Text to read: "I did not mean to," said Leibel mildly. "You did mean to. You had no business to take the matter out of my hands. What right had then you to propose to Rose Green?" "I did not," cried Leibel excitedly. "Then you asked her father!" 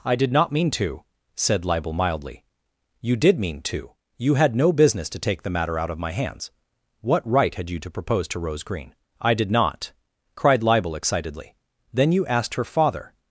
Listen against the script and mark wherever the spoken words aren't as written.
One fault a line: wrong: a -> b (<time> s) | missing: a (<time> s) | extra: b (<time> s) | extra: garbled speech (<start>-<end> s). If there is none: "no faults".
missing: then (7.7 s)